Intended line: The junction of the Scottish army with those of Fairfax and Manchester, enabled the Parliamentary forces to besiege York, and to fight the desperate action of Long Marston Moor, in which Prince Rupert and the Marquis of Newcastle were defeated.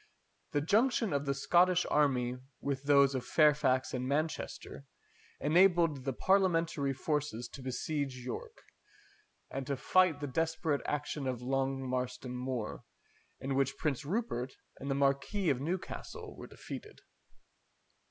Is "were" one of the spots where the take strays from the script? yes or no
no